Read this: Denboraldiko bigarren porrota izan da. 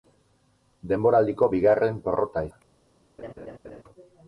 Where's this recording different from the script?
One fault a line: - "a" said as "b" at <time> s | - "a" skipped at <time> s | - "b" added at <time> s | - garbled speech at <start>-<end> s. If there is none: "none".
- "izan" skipped at 2.4 s